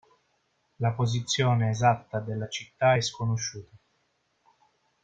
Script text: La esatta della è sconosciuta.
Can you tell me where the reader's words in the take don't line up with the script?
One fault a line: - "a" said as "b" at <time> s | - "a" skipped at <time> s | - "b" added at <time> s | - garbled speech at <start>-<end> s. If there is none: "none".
- "posizione" added at 0.9 s
- "città" added at 2.5 s